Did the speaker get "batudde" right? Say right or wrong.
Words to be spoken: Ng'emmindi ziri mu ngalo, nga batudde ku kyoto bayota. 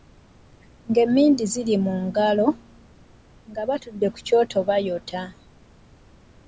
right